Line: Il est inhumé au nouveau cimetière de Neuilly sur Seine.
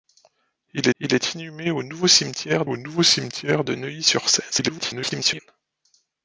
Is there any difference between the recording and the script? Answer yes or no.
yes